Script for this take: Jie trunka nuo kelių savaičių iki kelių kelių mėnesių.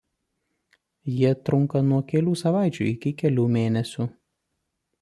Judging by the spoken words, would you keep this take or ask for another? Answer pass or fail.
fail